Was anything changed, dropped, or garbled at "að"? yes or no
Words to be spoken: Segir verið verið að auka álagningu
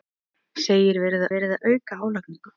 no